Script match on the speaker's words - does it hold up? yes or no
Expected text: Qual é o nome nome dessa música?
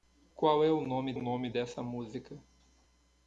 yes